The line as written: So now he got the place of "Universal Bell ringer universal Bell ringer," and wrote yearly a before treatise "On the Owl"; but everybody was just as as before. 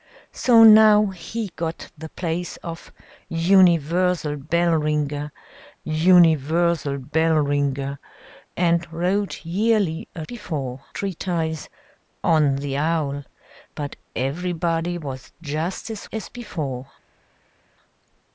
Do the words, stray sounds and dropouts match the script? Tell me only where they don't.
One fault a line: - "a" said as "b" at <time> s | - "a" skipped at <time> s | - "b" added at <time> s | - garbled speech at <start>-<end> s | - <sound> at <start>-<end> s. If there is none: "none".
none